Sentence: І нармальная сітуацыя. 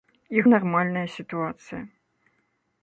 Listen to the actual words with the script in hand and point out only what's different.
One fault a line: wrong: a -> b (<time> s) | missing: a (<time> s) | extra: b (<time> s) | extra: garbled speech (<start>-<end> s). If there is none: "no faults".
no faults